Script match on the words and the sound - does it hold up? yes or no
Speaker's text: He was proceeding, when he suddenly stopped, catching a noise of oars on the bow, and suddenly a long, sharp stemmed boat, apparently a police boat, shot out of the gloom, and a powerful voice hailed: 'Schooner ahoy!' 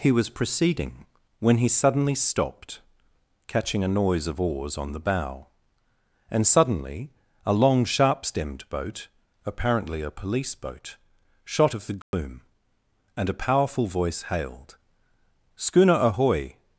no